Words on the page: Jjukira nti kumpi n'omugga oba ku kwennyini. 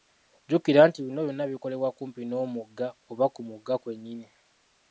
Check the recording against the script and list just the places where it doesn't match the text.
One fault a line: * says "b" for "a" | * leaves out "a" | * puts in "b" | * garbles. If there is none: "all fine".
* puts in "bino byonna bikolebwa"
* puts in "mugga"